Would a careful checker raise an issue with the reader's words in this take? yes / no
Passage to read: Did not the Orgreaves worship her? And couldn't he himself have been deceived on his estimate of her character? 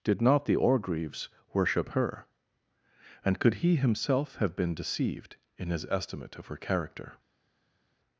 yes